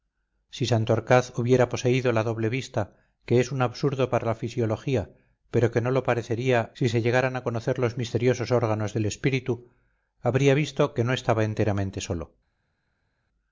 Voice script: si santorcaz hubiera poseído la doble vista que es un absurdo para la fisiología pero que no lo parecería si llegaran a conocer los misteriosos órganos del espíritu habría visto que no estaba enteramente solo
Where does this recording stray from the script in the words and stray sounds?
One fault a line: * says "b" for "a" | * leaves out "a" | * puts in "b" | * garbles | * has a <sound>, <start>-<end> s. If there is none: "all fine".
* puts in "se"